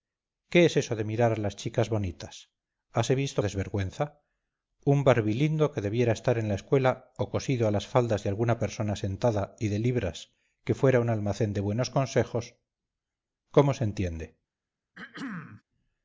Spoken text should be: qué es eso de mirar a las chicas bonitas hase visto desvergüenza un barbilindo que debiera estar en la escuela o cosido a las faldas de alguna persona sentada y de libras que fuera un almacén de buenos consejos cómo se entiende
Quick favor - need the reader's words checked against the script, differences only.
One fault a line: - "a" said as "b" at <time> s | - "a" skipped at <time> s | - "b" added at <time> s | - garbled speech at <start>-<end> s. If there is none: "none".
none